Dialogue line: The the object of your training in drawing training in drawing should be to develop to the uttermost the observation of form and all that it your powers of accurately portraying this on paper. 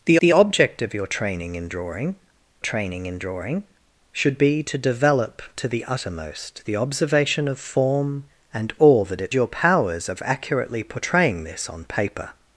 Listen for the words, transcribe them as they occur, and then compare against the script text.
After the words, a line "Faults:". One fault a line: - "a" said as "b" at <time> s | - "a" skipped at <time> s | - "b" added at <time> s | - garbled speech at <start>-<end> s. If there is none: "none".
The the object of your training in drawing training in drawing should be to develop to the uttermost the observation of form and all that it your powers of accurately portraying this on paper.
Faults:
none